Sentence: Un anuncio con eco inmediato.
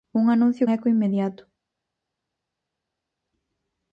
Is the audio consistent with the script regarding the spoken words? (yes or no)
no